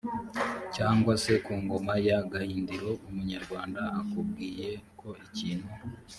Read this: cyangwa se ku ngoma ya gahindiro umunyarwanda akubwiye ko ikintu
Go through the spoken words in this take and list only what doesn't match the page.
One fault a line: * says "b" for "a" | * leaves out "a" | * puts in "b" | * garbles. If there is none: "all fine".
all fine